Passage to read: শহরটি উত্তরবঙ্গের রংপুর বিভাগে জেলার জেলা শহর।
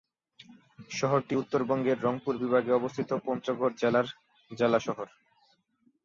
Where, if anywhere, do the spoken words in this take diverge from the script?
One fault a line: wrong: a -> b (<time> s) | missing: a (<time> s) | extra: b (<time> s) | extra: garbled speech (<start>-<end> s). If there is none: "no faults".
extra: অবস্থিত পঞ্চগড় (2.7 s)